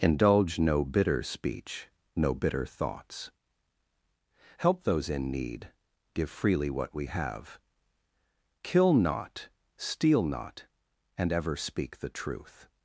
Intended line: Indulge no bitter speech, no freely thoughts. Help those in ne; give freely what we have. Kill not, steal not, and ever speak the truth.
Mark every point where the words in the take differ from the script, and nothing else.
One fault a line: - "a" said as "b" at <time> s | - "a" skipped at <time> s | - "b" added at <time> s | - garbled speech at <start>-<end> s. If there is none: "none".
- "freely" said as "bitter" at 2.3 s
- "ne" said as "need" at 5.3 s